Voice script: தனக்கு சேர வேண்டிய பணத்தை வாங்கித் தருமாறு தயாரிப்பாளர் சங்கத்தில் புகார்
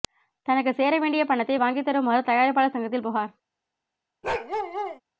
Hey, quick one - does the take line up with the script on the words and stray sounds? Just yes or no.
no